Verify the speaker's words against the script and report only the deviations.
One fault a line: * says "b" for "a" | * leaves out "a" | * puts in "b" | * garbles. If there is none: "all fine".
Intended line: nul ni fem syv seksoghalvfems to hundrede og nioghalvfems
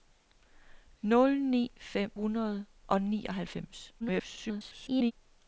* leaves out "syv seksoghalvfems to"
* garbles